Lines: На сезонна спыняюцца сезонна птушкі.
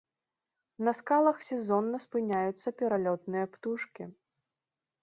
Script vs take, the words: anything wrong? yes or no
yes